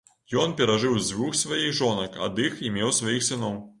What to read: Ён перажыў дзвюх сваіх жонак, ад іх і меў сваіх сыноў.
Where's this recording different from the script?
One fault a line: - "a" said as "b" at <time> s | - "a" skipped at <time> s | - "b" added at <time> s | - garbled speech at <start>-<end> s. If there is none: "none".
none